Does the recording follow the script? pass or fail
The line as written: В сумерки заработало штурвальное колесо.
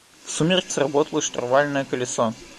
pass